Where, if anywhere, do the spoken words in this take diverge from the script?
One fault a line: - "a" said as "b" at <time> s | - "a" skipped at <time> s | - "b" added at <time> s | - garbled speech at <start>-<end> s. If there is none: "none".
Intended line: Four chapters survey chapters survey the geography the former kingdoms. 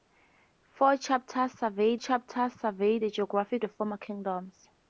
none